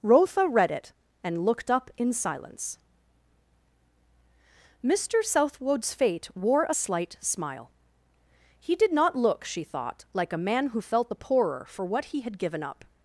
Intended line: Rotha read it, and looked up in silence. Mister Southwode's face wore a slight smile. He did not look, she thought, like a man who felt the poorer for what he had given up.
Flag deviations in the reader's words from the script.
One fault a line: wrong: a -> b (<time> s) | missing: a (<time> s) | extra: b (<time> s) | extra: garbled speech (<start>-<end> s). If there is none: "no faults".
wrong: face -> fate (5.9 s)